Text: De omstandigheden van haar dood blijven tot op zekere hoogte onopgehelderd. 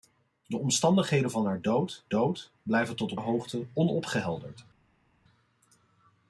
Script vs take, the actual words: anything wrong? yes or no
yes